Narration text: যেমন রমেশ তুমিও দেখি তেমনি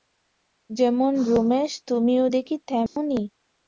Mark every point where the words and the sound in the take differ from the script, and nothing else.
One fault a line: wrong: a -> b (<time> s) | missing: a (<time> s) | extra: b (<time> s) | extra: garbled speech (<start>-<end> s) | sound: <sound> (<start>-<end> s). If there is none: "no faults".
sound: dropout (2.9-3.0 s)